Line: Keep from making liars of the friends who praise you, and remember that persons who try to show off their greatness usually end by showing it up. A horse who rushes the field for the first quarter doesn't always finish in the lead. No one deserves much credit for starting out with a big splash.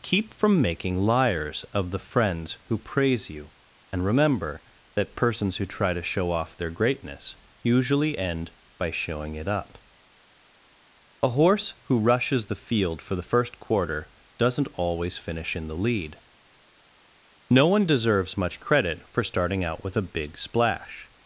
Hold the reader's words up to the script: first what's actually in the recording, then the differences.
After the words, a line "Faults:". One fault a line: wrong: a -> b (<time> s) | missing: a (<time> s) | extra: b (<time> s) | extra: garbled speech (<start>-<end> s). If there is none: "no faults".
Keep from making liars of the friends who praise you, and remember that persons who try to show off their greatness usually end by showing it up. A horse who rushes the field for the first quarter doesn't always finish in the lead. No one deserves much credit for starting out with a big splash.
Faults:
no faults